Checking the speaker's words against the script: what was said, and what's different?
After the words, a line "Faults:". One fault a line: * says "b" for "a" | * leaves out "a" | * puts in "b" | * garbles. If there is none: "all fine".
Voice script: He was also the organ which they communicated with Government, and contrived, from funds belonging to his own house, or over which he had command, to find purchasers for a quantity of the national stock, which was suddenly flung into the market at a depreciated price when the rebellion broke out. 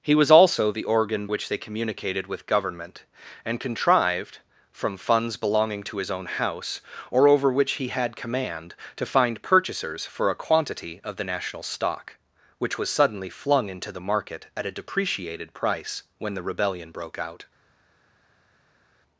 He was also the organ which they communicated with Government, and contrived, from funds belonging to his own house, or over which he had command, to find purchasers for a quantity of the national stock, which was suddenly flung into the market at a depreciated price when the rebellion broke out.
Faults:
all fine